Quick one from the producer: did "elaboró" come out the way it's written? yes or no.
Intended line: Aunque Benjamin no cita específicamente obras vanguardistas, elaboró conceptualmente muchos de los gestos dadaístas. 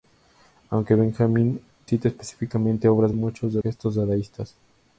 no